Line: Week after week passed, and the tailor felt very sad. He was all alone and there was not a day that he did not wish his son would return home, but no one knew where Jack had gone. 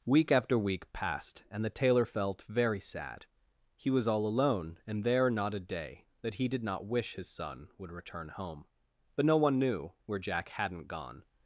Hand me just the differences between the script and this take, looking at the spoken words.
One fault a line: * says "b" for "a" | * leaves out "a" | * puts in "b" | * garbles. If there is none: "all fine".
* leaves out "was"
* says "hadn't" for "had"